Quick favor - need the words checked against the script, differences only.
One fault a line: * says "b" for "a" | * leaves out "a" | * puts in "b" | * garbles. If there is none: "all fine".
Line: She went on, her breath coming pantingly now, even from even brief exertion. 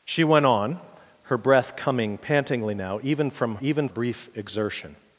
all fine